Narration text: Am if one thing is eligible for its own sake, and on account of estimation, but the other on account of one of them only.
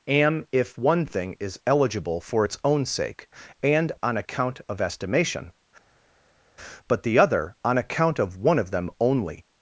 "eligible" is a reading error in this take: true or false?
false